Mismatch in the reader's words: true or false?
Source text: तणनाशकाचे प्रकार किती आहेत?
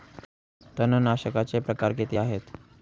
false